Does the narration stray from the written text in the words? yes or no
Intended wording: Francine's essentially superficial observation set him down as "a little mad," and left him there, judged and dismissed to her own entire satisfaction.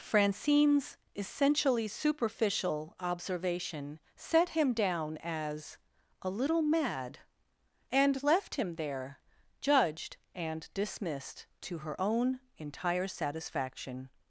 no